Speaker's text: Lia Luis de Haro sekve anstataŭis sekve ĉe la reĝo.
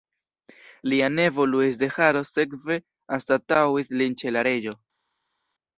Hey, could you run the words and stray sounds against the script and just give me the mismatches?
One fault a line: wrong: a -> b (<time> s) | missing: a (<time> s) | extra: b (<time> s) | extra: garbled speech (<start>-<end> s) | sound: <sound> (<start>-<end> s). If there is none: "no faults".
extra: nevo (1.2 s)
wrong: sekve -> lin (4.0 s)